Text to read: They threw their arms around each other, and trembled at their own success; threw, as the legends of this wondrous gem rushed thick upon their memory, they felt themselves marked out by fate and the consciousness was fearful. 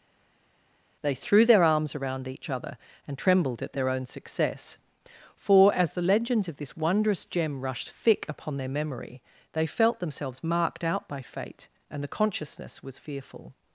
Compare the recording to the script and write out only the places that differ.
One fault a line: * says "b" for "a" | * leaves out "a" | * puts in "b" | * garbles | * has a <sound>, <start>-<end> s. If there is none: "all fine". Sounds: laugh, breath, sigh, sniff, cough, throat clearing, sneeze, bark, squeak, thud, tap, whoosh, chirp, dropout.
* says "for" for "threw"